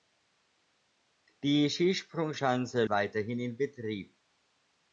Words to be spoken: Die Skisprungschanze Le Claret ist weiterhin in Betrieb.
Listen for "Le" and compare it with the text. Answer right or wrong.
wrong